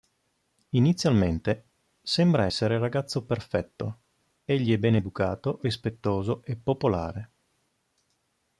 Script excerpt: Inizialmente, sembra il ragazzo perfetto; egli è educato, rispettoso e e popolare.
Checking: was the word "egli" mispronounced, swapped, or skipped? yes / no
no